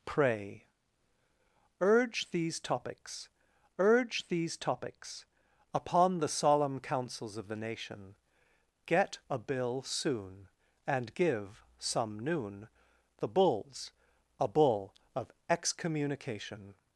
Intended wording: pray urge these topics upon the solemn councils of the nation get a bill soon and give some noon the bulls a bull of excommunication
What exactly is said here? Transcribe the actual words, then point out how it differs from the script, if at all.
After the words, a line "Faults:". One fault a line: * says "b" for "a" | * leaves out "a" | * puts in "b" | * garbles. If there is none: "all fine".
pray urge these topics urge these topics upon the solemn councils of the nation get a bill soon and give some noon the bulls a bull of excommunication
Faults:
* puts in "urge these topics"